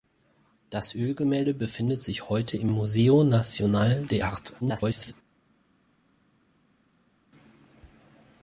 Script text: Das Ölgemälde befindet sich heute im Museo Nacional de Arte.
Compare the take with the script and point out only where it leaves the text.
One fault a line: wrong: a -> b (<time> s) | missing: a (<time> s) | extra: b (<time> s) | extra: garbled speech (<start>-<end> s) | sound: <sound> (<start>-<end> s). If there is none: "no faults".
extra: garbled speech (4.6-5.1 s)